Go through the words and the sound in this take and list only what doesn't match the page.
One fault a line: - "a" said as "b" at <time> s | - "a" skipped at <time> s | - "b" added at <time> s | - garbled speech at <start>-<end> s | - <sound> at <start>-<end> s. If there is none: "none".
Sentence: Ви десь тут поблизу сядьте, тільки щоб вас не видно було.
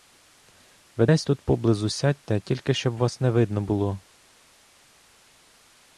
none